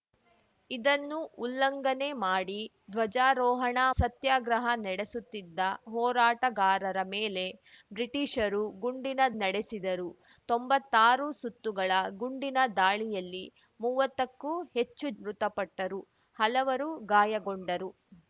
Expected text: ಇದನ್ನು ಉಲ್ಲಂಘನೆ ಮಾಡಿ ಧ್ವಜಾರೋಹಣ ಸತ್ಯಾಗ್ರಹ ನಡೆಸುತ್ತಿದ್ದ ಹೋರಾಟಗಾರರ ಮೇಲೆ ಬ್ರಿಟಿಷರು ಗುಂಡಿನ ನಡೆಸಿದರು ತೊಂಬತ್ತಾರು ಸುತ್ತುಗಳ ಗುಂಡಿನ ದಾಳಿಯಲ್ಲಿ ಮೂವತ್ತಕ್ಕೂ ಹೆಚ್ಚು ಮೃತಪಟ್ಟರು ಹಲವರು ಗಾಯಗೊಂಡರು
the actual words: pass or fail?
pass